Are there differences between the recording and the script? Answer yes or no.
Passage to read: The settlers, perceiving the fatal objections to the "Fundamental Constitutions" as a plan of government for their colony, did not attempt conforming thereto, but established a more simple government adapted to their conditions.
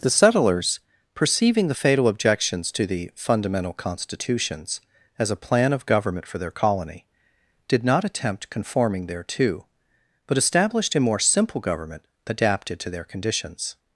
no